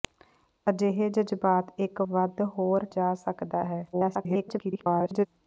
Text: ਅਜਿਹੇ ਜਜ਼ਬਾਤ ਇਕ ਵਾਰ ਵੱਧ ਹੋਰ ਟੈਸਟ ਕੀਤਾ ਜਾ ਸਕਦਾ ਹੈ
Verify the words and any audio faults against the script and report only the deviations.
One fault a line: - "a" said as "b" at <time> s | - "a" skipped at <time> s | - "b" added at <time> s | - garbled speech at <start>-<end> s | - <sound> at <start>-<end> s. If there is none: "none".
- "ਵਾਰ" skipped at 2.0 s
- "ਟੈਸਟ ਕੀਤਾ" skipped at 2.9 s
- garbled speech at 3.9-5.3 s